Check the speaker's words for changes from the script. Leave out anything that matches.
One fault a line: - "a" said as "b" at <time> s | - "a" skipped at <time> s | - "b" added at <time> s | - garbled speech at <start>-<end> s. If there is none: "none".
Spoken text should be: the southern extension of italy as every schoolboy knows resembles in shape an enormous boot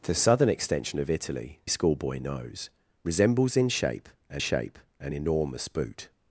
- "as every" skipped at 1.6 s
- "shape an" added at 4.4 s